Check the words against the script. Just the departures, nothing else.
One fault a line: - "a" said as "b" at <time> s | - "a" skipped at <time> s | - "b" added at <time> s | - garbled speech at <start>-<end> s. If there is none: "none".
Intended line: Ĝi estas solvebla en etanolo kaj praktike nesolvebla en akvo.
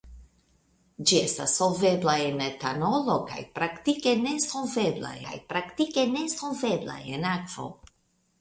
- "kaj praktike nesolvebla" added at 5.3 s